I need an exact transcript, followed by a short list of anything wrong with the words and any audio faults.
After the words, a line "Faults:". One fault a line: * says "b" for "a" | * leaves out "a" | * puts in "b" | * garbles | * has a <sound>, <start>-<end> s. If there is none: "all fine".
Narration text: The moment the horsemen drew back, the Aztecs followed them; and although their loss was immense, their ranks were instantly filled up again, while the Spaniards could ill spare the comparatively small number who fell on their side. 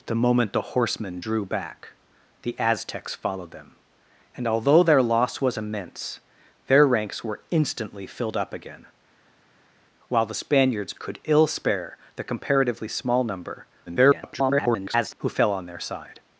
The moment the horsemen drew back, the Aztecs followed them; and although their loss was immense, their ranks were instantly filled up again, while the Spaniards could ill spare the comparatively small number [garbled] who fell on their side.
Faults:
* garbles